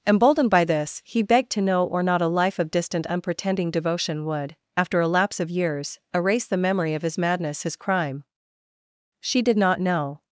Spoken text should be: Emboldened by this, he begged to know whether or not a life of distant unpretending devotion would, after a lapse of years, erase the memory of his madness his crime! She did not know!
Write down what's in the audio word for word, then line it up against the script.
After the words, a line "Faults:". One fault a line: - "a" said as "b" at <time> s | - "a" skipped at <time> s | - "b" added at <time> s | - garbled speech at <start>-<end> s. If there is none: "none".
Emboldened by this, he begged to know or not a life of distant unpretending devotion would, after a lapse of years, erase the memory of his madness his crime! She did not know!
Faults:
- "whether" skipped at 1.9 s